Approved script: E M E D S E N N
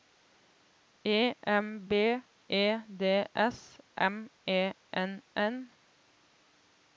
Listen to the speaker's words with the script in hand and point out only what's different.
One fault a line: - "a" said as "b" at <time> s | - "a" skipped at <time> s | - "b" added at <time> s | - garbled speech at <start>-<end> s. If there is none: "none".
- "B" added at 1.9 s
- "M" added at 4.0 s